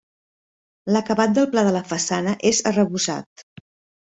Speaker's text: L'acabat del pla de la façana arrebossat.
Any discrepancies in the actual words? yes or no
yes